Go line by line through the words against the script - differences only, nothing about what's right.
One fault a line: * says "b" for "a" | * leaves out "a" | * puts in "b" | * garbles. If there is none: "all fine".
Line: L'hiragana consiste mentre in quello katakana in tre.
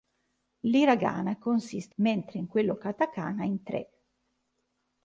all fine